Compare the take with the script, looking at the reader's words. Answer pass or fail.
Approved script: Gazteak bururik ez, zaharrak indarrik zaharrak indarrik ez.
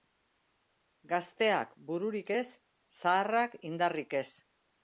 fail